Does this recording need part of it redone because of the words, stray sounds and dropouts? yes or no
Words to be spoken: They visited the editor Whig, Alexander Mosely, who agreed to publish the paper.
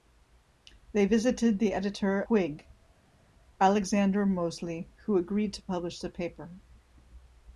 no